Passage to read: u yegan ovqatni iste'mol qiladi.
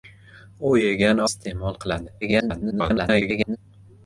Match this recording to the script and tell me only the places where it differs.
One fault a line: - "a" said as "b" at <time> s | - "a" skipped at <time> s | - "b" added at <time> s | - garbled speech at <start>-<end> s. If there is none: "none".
- "ovqatni" skipped at 1.2 s
- garbled speech at 2.2-3.6 s